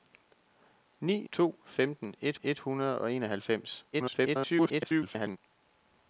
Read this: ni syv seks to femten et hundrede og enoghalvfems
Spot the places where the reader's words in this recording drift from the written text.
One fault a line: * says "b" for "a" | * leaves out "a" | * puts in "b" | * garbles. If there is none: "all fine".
* leaves out "syv seks"
* puts in "et"
* garbles